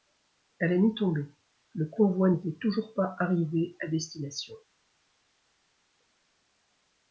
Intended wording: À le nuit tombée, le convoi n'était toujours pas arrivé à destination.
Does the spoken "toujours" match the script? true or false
true